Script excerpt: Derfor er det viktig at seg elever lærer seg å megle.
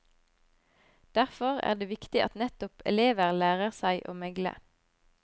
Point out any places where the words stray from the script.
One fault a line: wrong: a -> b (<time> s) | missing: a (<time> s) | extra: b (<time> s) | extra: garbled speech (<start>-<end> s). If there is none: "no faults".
wrong: seg -> nettopp (2.4 s)